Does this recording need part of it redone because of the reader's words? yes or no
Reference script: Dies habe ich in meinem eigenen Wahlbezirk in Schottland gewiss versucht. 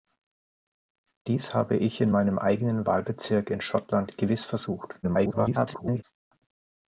yes